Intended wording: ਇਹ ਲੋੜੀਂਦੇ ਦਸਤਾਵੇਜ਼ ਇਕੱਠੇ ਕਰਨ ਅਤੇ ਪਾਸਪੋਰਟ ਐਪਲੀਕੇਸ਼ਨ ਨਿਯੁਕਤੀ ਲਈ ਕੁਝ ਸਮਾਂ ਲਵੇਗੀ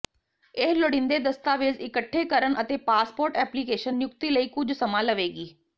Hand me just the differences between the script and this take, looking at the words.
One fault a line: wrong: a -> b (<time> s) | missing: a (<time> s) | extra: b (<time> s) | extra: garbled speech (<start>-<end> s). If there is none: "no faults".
no faults